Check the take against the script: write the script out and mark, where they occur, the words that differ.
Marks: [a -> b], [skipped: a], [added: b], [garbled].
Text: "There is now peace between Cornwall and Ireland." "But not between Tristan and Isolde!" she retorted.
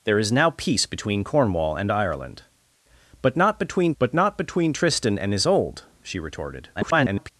"There is now peace between Cornwall and Ireland." "But not between [added: but not between] Tristan and Isolde!" she retorted. [garbled]